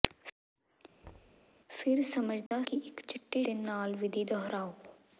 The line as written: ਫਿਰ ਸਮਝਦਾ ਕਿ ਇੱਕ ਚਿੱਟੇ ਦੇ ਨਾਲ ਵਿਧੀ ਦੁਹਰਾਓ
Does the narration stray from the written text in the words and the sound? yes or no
yes